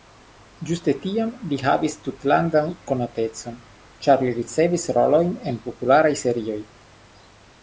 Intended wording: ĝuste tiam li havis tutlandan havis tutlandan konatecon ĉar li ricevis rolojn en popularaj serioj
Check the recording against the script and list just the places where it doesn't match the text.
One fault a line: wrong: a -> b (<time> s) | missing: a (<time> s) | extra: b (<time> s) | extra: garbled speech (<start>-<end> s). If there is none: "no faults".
missing: havis tutlandan (2.7 s)